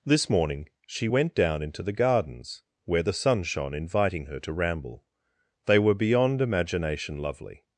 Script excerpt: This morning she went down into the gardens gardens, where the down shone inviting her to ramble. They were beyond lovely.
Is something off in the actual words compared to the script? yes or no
yes